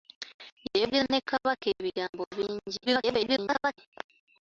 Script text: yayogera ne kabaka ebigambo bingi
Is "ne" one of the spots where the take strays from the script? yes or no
no